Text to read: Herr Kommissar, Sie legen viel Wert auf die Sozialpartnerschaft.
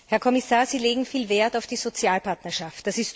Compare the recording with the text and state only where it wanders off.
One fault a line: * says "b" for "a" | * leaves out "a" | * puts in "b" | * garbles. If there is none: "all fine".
all fine